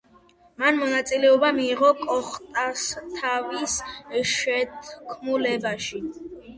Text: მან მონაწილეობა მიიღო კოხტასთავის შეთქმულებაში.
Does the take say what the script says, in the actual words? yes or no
yes